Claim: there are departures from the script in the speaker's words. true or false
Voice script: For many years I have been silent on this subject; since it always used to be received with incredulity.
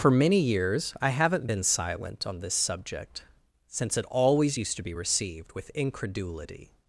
true